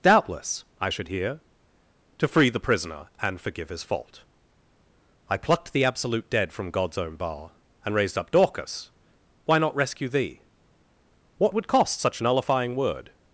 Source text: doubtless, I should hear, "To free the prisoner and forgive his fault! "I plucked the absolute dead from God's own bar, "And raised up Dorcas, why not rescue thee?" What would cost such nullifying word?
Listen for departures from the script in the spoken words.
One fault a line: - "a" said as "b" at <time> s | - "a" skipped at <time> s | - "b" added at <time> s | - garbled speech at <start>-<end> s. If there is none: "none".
none